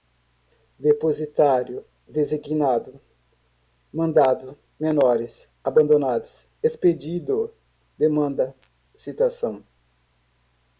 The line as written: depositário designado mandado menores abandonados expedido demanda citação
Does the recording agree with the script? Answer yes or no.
yes